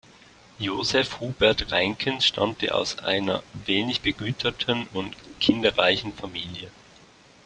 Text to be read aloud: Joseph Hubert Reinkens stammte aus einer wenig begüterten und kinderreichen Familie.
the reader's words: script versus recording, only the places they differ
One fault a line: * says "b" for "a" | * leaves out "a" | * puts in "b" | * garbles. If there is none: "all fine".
all fine